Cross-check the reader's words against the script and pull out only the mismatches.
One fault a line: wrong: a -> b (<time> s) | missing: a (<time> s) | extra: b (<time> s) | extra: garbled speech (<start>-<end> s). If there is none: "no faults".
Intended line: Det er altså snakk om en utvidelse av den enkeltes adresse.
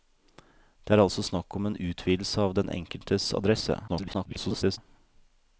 extra: garbled speech (3.9-4.8 s)